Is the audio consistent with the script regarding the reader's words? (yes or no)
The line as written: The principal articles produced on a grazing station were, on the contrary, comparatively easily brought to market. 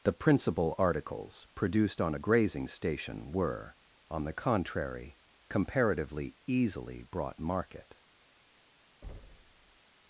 no